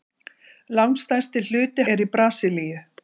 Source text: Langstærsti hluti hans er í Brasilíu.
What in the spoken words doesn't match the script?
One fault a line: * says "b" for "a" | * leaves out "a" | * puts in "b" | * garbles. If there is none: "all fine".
* leaves out "hans"